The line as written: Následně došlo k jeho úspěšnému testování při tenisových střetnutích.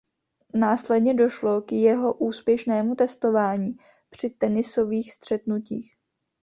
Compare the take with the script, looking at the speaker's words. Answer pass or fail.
pass